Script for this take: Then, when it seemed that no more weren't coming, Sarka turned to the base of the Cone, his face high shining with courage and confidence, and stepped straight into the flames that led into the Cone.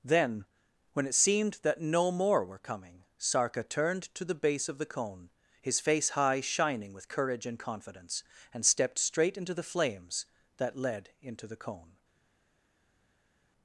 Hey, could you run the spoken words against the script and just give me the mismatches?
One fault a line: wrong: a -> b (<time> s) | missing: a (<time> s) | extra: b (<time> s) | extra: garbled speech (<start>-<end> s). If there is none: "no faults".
wrong: weren't -> were (2.4 s)